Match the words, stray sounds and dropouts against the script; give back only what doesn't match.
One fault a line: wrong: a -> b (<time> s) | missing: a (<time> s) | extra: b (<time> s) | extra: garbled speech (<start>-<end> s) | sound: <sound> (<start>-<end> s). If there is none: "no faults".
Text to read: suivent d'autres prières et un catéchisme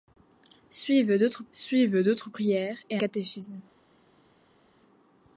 extra: suivent d'autres (1.5 s)
missing: un (3.0 s)